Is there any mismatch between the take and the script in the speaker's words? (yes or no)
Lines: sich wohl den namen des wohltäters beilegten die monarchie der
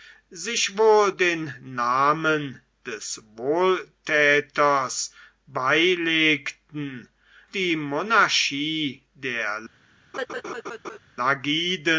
no